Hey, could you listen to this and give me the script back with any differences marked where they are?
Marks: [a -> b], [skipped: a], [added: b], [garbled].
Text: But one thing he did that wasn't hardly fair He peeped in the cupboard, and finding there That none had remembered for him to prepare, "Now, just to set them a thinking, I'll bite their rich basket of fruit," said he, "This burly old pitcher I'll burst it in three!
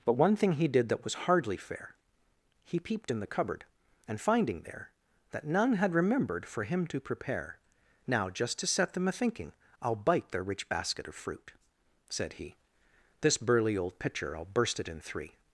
But one thing he did that [wasn't -> was] hardly fair He peeped in the cupboard, and finding there That none had remembered for him to prepare, "Now, just to set them a thinking, I'll bite their rich basket of fruit," said he, "This burly old pitcher I'll burst it in three!